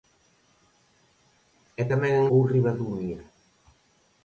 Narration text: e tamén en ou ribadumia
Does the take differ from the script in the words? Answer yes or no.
no